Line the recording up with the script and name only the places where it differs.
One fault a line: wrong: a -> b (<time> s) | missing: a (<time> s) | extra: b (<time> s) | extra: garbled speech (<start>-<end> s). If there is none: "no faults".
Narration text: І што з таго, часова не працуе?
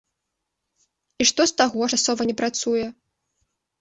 no faults